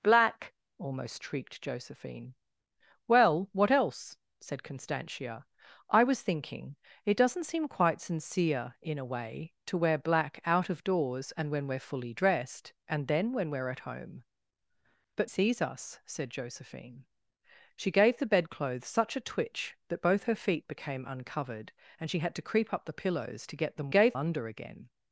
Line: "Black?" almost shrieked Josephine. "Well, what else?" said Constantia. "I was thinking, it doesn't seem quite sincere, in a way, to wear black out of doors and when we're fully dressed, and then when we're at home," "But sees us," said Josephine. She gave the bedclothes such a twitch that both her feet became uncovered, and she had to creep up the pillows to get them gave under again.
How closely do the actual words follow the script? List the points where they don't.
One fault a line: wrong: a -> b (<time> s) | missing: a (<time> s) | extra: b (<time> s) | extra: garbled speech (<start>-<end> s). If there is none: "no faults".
no faults